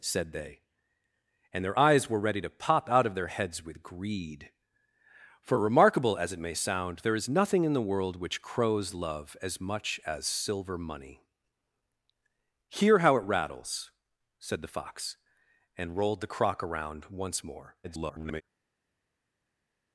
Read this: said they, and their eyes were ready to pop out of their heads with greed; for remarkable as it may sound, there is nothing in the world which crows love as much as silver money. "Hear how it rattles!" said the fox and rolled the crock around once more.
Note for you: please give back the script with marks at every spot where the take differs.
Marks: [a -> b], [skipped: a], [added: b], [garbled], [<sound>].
said they, and their eyes were ready to pop out of their heads with greed; for remarkable as it may sound, there is nothing in the world which crows love as much as silver money. "Hear how it rattles!" said the fox and rolled the crock around once more. [garbled]